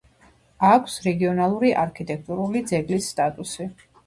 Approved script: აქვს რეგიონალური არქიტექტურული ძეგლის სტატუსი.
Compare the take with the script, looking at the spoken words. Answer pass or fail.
pass